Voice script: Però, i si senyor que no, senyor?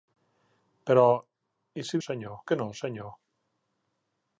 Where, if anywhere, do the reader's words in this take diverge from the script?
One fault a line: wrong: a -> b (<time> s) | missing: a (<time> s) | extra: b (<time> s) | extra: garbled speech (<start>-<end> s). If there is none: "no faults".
no faults